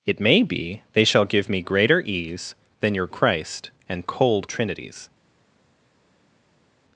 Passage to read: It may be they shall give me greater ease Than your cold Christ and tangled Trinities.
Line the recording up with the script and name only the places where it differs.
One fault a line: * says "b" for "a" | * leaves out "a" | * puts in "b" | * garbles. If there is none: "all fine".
* leaves out "cold"
* says "cold" for "tangled"